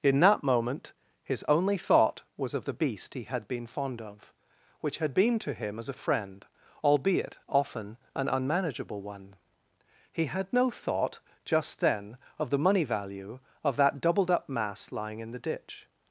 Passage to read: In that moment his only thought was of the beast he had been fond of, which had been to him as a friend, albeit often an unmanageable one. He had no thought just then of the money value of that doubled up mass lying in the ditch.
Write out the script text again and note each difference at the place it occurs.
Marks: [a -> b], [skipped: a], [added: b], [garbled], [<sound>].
In that moment his only thought was of the beast he had been fond of, which had been to him as a friend, albeit often an unmanageable one. He had no thought just then of the money value of that doubled up mass lying in the ditch.